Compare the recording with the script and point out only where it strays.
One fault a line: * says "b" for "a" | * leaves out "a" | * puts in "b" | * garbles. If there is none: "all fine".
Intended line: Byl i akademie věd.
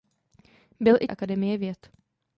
all fine